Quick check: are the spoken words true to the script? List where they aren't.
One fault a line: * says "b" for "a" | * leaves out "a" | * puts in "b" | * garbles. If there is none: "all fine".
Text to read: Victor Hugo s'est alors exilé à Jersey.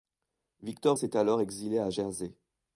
* leaves out "Hugo"